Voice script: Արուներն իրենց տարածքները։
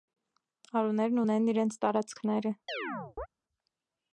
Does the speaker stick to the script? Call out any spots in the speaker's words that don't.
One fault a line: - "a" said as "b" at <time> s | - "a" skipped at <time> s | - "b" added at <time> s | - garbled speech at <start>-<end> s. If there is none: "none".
- "ունեն" added at 1.2 s